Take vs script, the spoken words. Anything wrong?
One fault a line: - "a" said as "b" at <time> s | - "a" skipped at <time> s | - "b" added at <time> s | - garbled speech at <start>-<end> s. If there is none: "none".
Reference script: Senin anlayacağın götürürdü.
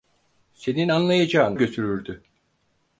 none